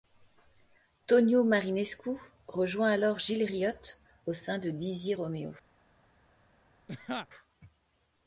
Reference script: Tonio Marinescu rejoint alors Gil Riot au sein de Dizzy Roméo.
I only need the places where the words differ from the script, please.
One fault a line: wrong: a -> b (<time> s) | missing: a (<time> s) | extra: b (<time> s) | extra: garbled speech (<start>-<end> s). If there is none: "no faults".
no faults